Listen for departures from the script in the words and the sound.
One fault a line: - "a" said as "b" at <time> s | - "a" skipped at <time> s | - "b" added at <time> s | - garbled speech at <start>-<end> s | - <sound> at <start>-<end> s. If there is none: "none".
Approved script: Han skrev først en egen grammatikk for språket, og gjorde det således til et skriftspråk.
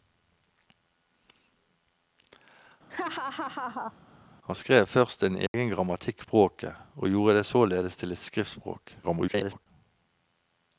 - laugh at 2.9-3.9 s
- dropout at 5.5-5.5 s
- "for" skipped at 6.2 s
- garbled speech at 9.0-9.7 s